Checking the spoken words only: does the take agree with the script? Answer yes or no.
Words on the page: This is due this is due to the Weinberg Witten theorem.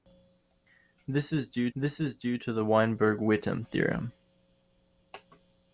yes